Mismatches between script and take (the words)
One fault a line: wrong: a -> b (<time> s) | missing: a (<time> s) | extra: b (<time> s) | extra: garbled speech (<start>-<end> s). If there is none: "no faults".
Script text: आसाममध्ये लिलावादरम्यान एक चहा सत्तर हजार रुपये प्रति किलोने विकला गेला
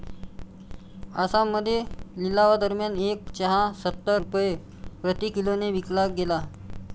missing: हजार (4.2 s)